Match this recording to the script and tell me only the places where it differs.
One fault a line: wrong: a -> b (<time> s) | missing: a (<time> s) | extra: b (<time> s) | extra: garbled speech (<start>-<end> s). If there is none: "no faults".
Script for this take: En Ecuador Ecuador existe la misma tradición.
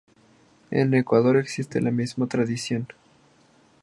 missing: Ecuador (1.4 s)